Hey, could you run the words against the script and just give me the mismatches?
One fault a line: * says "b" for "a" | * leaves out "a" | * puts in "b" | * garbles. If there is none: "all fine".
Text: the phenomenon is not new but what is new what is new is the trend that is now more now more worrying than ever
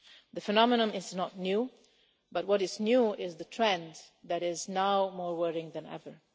* leaves out "what"
* leaves out "new is"
* leaves out "now more"